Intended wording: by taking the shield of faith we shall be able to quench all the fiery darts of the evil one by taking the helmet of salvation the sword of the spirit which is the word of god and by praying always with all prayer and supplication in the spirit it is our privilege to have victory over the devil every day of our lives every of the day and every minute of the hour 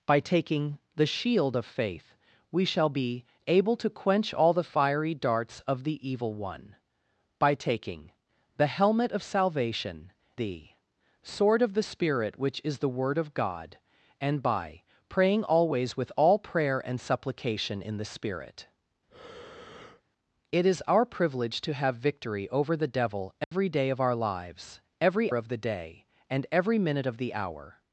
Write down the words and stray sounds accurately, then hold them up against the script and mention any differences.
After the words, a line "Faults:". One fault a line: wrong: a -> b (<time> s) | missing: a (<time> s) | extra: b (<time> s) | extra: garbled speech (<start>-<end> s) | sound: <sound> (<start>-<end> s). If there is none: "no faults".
by taking the shield of faith we shall be able to quench all the fiery darts of the evil one by taking the helmet of salvation the sword of the spirit which is the word of god and by praying always with all prayer and supplication in the spirit it is our privilege to have victory over the devil every day of our lives every of the day and every minute of the hour
Faults:
sound: breath (19.1-20.0 s)
sound: dropout (23.4-23.5 s)